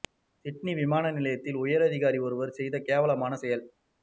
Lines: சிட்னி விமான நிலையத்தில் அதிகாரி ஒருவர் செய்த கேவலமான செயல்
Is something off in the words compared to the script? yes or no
yes